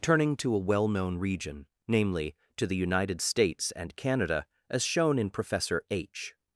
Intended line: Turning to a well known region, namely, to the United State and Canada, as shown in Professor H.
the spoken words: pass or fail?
fail